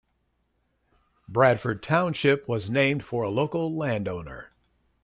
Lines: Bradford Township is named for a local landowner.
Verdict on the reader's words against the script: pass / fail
fail